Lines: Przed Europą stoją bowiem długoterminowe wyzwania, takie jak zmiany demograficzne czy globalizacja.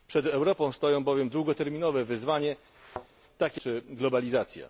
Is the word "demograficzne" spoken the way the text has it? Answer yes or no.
no